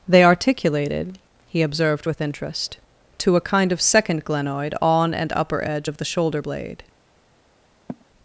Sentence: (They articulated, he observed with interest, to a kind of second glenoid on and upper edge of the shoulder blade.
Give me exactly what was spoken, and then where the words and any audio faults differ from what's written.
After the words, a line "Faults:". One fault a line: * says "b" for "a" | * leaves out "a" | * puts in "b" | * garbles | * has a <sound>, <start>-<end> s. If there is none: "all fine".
(They articulated, he observed with interest, to a kind of second glenoid on and upper edge of the shoulder blade.
Faults:
* has a sigh, 7.9-8.1 s